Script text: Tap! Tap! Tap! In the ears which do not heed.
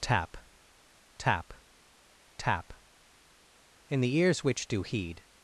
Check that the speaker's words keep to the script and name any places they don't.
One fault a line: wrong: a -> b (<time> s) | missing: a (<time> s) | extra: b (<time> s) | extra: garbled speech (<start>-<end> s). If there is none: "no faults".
missing: not (4.8 s)